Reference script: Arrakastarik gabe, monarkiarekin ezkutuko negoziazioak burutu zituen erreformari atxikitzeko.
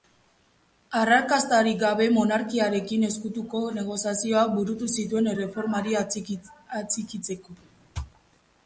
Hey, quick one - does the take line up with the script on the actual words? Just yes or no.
yes